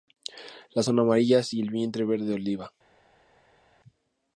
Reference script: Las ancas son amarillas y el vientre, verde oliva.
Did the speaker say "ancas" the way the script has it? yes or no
no